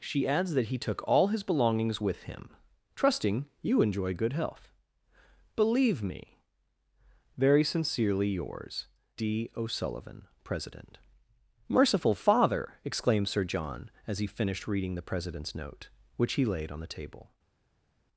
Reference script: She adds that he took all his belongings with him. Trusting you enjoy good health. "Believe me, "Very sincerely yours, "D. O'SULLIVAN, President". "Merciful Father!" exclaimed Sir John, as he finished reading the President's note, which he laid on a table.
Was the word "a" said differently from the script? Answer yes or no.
yes